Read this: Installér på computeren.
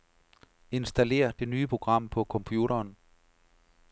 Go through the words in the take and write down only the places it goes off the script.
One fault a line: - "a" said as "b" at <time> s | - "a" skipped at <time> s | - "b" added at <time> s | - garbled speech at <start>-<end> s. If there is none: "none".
- "det nye program" added at 1.4 s